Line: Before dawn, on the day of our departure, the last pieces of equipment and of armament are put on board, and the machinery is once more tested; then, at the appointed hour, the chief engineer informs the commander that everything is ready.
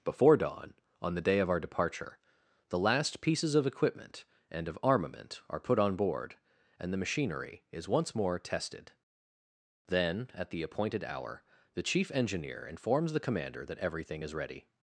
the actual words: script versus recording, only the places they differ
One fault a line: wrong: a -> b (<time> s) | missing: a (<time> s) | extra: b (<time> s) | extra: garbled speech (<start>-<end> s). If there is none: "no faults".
no faults